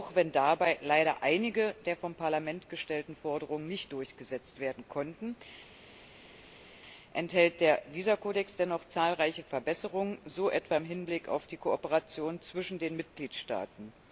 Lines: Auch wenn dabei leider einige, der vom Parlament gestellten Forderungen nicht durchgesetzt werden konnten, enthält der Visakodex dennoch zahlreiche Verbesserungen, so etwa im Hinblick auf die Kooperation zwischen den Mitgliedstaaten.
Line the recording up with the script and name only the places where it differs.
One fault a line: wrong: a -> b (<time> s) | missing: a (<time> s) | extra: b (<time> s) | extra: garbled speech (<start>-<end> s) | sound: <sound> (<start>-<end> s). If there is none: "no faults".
no faults